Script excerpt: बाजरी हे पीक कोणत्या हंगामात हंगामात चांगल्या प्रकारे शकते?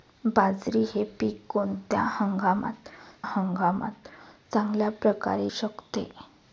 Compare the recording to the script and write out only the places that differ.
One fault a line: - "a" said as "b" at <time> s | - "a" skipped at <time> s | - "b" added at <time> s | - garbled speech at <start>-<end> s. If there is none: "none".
none